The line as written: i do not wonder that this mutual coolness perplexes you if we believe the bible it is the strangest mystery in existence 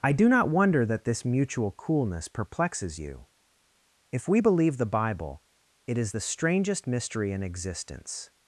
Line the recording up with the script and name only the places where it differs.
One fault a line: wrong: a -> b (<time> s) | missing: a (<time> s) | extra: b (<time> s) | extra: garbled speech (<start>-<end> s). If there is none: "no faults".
no faults